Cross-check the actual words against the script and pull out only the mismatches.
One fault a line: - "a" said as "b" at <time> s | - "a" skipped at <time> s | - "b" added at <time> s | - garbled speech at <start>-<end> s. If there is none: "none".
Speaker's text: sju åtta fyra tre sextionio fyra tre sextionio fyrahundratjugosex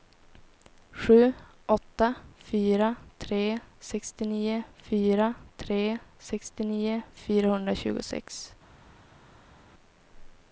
none